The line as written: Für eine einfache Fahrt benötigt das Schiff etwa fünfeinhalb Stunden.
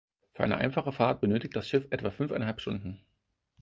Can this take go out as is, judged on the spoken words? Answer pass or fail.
pass